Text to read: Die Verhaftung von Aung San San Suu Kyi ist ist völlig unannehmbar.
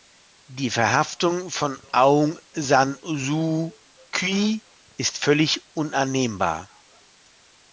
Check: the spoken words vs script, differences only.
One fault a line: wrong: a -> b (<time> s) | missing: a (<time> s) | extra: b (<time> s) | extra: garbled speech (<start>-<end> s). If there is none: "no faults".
missing: San (3.0 s)
missing: ist (5.2 s)